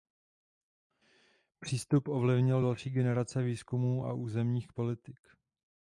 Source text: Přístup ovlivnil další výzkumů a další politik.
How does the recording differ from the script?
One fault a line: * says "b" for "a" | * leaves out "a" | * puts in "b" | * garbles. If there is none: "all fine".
* puts in "generace"
* says "územních" for "další"